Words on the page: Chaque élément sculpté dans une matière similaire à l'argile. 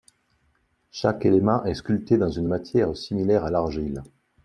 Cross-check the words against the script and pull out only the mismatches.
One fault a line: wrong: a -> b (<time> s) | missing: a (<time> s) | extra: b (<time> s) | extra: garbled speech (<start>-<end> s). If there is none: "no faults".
extra: est (1.6 s)